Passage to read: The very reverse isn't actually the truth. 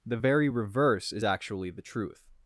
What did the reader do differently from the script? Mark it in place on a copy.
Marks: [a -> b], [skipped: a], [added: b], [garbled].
The very reverse [isn't -> is] actually the truth.